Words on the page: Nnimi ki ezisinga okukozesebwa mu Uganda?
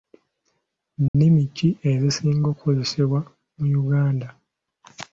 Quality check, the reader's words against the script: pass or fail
pass